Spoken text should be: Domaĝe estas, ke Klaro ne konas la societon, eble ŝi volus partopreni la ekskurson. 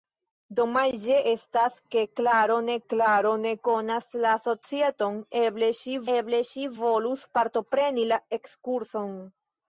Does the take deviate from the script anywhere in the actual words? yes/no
yes